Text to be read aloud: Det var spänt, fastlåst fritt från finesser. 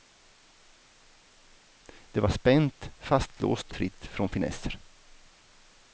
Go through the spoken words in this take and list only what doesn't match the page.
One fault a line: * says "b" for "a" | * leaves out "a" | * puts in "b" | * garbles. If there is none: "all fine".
all fine